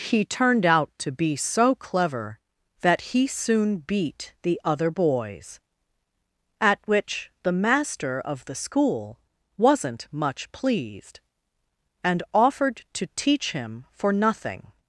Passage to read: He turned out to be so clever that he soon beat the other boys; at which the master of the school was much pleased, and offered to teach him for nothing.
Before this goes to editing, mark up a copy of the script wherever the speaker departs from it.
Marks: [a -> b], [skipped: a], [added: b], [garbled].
He turned out to be so clever that he soon beat the other boys; at which the master of the school [was -> wasn't] much pleased, and offered to teach him for nothing.